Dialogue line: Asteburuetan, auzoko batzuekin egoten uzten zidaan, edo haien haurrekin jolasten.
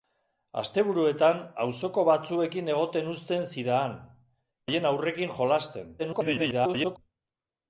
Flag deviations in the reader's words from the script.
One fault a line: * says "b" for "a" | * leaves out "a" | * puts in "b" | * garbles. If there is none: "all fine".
* leaves out "edo"
* garbles